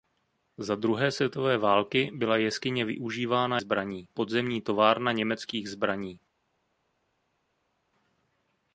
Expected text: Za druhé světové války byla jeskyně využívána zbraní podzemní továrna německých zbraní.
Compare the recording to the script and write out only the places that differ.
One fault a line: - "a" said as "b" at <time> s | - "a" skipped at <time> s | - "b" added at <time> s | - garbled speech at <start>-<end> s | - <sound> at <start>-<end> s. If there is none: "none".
none